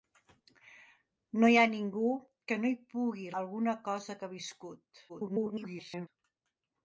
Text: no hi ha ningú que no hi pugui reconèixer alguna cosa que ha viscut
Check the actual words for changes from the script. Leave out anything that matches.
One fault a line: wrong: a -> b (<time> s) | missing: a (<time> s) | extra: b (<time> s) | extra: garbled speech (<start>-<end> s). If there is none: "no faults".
missing: reconèixer (3.3 s)
extra: garbled speech (5.1-6.1 s)